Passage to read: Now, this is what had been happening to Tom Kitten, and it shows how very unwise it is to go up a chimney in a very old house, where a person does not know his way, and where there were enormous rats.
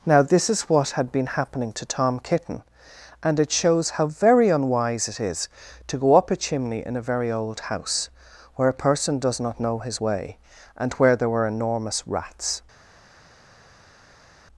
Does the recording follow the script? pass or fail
pass